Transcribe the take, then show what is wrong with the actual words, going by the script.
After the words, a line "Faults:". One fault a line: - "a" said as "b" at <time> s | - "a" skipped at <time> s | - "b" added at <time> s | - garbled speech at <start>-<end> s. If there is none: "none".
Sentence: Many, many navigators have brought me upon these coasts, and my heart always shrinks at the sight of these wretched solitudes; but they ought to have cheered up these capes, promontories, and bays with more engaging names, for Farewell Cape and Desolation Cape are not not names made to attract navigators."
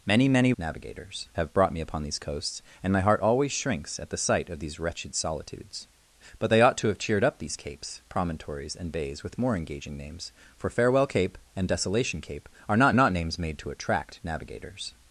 Many, many navigators have brought me upon these coasts, and my heart always shrinks at the sight of these wretched solitudes; but they ought to have cheered up these capes, promontories, and bays with more engaging names, for Farewell Cape and Desolation Cape are not not names made to attract navigators."
Faults:
none